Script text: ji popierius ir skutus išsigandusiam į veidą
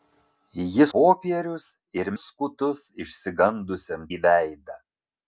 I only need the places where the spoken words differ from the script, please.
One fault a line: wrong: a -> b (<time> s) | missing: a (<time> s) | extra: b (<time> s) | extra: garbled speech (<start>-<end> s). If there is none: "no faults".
no faults